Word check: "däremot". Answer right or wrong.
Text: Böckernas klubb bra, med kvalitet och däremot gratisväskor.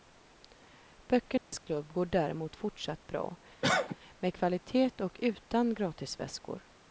wrong